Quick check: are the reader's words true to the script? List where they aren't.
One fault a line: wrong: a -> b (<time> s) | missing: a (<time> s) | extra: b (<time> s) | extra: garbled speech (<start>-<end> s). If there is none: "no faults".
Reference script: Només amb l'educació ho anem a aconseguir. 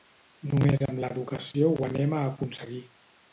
no faults